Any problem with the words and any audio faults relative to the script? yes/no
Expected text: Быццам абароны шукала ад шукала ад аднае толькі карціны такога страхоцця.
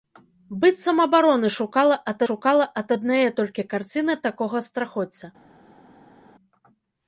no